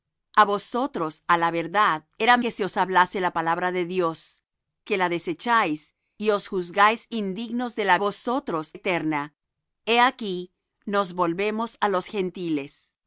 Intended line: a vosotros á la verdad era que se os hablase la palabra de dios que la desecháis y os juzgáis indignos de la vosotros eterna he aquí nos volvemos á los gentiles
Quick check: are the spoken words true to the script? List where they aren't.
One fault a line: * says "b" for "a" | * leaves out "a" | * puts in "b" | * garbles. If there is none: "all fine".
all fine